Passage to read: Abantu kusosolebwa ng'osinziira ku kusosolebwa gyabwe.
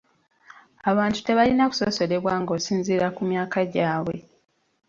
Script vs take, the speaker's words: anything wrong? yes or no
yes